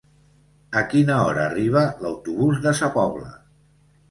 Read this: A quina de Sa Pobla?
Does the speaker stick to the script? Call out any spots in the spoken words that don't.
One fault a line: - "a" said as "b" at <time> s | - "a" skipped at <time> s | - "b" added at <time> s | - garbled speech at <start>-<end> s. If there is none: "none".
- "hora arriba l'autobús" added at 1.2 s